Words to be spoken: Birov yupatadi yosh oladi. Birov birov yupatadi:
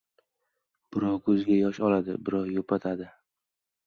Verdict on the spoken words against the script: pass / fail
fail